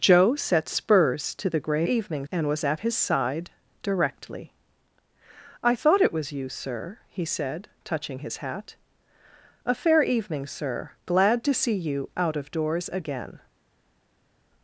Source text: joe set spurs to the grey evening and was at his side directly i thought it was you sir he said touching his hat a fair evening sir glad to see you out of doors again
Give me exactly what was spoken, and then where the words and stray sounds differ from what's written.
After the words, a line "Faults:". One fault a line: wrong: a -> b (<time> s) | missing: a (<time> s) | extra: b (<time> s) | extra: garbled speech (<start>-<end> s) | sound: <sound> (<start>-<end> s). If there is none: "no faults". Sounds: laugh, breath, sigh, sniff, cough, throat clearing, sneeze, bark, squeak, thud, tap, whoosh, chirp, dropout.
joe set spurs to the grey evening and was at his side directly i thought it was you sir he said touching his hat a fair evening sir glad to see you out of doors again
Faults:
no faults